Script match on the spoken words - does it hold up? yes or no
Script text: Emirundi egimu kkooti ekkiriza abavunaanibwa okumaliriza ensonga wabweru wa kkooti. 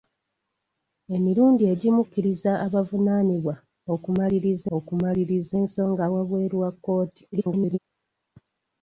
no